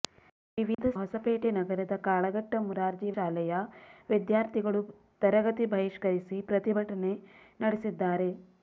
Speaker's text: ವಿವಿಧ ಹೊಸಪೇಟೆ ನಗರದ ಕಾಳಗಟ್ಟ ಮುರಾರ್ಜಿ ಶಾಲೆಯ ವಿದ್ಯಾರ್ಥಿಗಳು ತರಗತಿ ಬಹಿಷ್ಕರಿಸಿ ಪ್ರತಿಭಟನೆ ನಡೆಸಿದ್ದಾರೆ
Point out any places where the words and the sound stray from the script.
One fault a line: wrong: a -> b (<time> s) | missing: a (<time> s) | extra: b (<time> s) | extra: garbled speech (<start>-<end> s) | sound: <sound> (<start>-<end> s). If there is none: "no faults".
sound: dropout (0.7-0.8 s)